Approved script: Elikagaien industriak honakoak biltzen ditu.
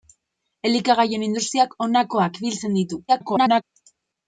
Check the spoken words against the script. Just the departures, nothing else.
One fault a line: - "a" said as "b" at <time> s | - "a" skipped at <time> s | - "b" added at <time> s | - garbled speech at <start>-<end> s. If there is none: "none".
- garbled speech at 3.1-3.6 s